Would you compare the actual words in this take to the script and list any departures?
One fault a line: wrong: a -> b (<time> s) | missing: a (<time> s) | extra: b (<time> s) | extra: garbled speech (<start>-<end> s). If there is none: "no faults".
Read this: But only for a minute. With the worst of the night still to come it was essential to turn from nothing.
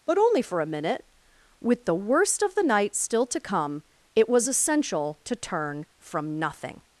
no faults